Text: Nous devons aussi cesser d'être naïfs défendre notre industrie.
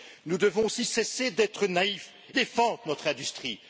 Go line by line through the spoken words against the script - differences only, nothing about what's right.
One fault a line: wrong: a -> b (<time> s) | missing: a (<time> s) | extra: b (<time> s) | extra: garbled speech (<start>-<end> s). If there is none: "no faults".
no faults